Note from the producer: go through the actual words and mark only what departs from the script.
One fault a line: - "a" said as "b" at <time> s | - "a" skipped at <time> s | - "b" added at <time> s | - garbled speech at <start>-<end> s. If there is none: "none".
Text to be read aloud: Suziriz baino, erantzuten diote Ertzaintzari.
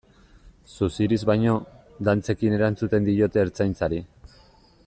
- "dantzekin" added at 2.1 s